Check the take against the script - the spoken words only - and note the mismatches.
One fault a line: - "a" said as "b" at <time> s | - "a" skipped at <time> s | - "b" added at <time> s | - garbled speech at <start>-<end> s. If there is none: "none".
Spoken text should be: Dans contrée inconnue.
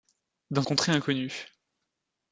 none